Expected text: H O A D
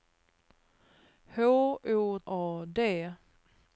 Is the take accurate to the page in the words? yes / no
yes